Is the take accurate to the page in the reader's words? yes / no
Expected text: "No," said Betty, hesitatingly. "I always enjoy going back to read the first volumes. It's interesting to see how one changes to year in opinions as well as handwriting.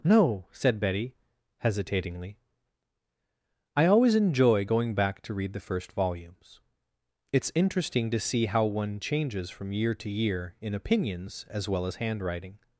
no